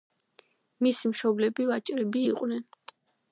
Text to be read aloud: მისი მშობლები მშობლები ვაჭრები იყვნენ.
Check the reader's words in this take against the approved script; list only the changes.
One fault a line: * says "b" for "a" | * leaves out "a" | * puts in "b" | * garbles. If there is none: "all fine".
* leaves out "მშობლები"